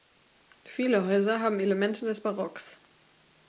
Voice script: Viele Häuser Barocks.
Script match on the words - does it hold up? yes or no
no